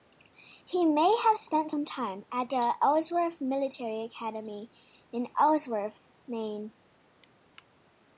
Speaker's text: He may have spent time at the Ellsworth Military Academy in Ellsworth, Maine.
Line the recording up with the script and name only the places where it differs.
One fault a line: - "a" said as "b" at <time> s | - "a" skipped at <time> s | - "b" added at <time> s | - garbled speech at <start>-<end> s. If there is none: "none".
- "some" added at 1.7 s